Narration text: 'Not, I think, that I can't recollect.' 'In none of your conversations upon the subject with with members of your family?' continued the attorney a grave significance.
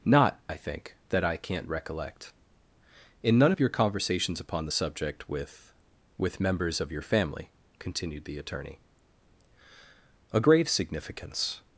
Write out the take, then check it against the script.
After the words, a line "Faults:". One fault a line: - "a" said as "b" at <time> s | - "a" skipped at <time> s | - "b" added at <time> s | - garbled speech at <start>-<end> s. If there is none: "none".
'Not, I think, that I can't recollect.' 'In none of your conversations upon the subject with with members of your family?' continued the attorney a grave significance.
Faults:
none